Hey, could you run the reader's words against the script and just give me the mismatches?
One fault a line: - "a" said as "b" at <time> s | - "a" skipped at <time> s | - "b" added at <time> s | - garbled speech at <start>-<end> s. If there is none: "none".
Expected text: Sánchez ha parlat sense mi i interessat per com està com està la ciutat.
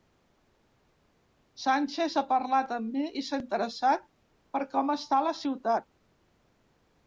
- "sense" said as "amb" at 2.8 s
- "s'ha" added at 3.3 s
- "com està" skipped at 5.2 s